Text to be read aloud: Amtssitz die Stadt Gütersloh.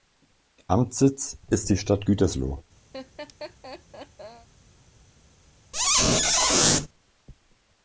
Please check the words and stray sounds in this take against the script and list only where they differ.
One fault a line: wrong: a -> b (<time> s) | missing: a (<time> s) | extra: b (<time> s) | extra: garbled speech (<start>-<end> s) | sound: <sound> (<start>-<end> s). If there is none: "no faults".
extra: ist (1.5 s)
sound: laugh (2.9-4.5 s)
sound: squeak (5.7-6.9 s)